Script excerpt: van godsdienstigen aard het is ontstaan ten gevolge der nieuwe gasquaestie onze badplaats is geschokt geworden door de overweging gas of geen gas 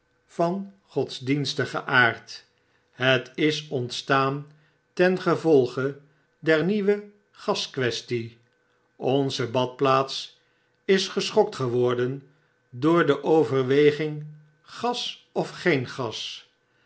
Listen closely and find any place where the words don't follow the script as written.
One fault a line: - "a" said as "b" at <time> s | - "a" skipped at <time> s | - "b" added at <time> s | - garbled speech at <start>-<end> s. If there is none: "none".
none